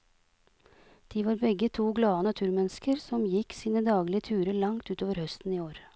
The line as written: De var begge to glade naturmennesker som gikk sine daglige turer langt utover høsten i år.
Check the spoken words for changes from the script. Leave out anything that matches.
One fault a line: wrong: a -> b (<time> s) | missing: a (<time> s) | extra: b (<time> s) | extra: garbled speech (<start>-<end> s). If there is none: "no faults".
no faults